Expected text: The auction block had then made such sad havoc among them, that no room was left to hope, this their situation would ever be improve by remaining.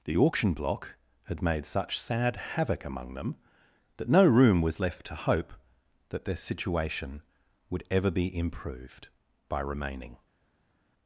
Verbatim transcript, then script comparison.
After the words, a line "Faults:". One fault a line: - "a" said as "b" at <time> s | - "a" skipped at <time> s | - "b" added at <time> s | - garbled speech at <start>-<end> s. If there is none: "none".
The auction block had made such sad havoc among them, that no room was left to hope, that their situation would ever be improved by remaining.
Faults:
- "then" skipped at 1.4 s
- "this" said as "that" at 6.1 s
- "improve" said as "improved" at 8.3 s